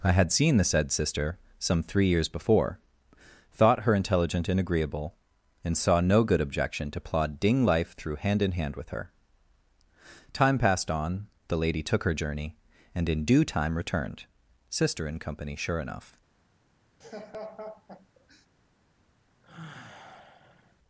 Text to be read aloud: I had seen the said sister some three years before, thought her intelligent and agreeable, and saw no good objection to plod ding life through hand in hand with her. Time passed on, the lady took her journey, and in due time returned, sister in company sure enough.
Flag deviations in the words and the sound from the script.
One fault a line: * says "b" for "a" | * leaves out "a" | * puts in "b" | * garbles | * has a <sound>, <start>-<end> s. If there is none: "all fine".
* has a laugh, 17.0-18.5 s
* has a sigh, 19.4-20.8 s